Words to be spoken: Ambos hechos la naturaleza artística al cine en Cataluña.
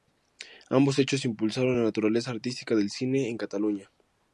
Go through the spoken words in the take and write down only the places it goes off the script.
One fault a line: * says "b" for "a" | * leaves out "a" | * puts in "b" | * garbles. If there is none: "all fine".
* puts in "impulsaron"
* says "del" for "al"